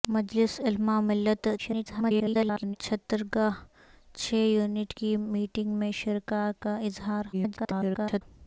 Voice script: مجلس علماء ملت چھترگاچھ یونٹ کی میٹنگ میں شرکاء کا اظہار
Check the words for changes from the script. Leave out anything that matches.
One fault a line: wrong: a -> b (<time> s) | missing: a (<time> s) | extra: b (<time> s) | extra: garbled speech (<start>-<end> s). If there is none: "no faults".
extra: garbled speech (1.6-2.8 s)
extra: garbled speech (7.3-8.2 s)